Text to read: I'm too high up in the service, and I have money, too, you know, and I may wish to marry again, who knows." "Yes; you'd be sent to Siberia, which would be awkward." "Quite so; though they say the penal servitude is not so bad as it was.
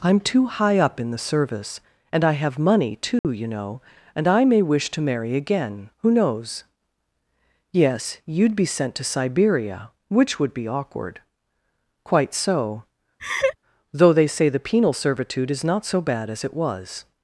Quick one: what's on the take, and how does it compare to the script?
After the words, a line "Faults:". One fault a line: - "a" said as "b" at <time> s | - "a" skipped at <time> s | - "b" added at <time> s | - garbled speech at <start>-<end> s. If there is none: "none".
I'm too high up in the service, and I have money, too, you know, and I may wish to marry again, who knows." "Yes; you'd be sent to Siberia, which would be awkward." "Quite so; though they say the penal servitude is not so bad as it was.
Faults:
none